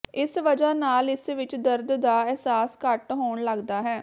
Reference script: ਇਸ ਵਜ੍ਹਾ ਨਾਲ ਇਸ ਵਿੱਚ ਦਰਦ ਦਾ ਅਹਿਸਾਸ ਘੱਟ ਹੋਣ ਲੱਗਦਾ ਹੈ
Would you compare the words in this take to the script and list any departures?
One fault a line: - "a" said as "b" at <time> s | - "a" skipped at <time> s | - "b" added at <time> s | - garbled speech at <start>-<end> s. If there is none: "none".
none